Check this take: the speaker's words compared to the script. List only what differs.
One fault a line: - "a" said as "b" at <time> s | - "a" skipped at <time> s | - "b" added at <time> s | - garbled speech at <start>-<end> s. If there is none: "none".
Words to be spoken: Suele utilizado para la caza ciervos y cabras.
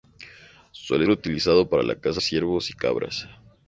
none